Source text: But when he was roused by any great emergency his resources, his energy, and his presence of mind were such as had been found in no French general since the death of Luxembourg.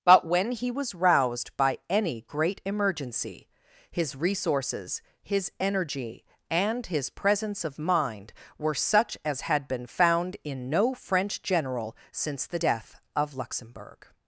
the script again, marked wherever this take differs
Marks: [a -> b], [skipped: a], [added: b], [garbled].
But when he was roused by any great emergency his resources, his energy, and his presence of mind were such as had been found in no French general since the death of Luxembourg.